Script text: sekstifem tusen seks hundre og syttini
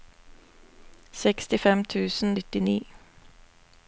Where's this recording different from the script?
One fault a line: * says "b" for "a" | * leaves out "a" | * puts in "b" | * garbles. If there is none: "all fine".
* leaves out "seks hundre og"